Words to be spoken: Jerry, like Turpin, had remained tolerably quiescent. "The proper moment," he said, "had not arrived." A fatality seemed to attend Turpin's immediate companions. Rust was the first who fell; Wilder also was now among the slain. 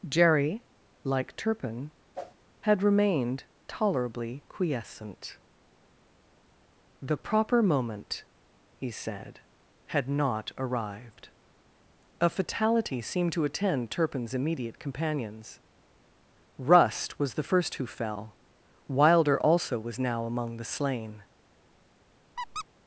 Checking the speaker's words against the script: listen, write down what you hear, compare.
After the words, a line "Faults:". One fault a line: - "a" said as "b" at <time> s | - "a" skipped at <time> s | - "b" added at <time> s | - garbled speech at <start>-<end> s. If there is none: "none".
Jerry, like Turpin, had remained tolerably quiescent. "The proper moment," he said, "had not arrived." A fatality seemed to attend Turpin's immediate companions. Rust was the first who fell; Wilder also was now among the slain.
Faults:
none